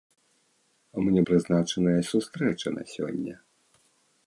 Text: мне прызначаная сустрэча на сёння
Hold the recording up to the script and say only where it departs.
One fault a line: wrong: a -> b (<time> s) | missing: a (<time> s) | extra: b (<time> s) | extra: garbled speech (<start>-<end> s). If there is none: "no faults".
no faults